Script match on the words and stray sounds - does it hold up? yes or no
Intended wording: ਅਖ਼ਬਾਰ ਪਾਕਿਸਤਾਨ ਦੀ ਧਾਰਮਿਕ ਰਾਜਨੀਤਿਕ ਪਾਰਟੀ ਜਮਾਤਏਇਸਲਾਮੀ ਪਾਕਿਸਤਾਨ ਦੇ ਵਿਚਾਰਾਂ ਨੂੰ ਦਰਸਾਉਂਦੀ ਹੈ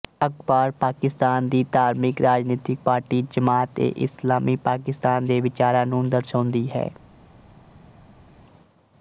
yes